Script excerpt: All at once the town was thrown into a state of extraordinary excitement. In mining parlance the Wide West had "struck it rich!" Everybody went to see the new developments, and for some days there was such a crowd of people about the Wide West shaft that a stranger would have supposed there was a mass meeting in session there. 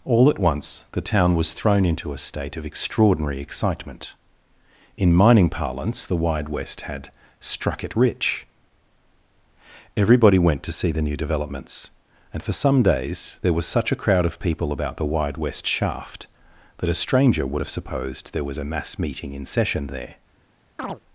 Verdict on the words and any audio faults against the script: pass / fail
fail